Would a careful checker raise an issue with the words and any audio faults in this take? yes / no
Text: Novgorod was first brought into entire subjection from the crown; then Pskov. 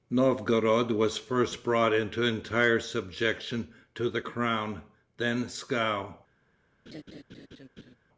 yes